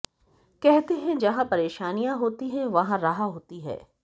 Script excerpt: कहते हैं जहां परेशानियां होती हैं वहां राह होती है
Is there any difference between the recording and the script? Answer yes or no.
no